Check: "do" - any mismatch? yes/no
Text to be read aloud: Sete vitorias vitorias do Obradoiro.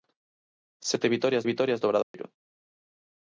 no